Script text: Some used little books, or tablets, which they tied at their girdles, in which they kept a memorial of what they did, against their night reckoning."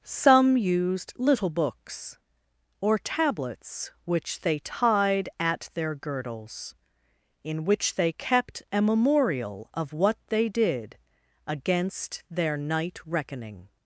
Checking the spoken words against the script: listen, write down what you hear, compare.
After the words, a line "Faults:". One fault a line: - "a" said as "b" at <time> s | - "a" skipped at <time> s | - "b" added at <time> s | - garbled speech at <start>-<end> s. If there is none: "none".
Some used little books, or tablets, which they tied at their girdles, in which they kept a memorial of what they did, against their night reckoning."
Faults:
none